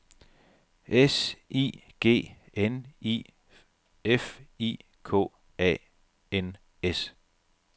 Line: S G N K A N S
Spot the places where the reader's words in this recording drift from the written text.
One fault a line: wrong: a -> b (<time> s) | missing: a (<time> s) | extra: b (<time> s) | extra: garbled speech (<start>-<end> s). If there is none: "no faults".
extra: I (1.5 s)
extra: I F I (3.0 s)